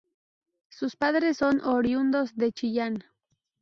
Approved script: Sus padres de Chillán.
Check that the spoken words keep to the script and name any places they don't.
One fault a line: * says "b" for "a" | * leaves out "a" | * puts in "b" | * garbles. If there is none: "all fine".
* puts in "son oriundos"